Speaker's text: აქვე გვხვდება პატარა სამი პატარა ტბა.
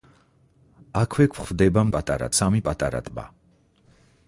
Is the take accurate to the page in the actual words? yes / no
yes